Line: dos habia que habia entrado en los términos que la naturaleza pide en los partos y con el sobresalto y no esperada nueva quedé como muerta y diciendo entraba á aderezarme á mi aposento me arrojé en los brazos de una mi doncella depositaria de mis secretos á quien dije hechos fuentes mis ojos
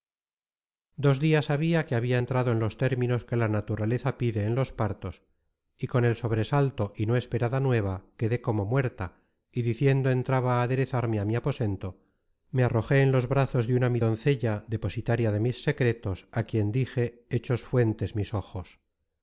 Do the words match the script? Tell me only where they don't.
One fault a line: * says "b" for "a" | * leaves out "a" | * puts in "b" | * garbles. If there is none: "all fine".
* puts in "dias"